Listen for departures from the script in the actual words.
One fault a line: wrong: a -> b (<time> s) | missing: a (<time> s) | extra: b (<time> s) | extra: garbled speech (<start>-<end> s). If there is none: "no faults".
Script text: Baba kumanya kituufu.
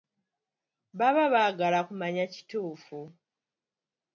extra: baagala (1.3 s)